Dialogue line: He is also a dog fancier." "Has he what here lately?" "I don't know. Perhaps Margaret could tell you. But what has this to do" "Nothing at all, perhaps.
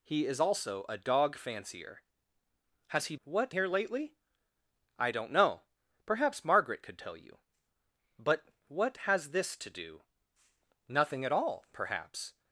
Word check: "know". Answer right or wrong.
right